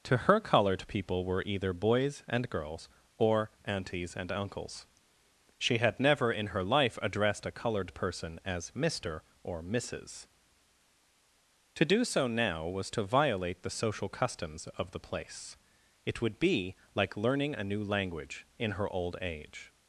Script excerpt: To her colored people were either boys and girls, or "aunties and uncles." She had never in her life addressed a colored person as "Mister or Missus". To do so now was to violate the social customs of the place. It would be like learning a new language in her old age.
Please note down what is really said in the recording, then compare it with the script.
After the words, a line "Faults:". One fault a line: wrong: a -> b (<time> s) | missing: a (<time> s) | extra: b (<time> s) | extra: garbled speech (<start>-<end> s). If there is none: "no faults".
To her colored people were either boys and girls, or "aunties and uncles." She had never in her life addressed a colored person as "Mister or Missus". To do so now was to violate the social customs of the place. It would be like learning a new language in her old age.
Faults:
no faults